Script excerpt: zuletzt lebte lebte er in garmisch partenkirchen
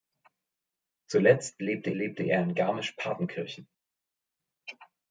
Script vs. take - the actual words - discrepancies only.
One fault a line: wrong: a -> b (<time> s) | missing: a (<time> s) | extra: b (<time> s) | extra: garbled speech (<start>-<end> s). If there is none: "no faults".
no faults